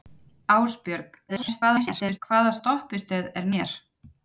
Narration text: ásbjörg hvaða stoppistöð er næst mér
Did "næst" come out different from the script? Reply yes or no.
yes